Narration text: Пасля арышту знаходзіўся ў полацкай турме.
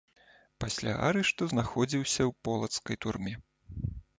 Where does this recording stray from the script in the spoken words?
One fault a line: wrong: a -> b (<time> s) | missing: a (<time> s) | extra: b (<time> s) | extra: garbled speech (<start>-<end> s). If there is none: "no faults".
no faults